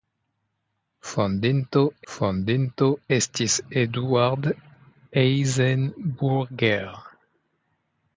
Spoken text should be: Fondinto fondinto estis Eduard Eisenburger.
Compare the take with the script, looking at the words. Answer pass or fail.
pass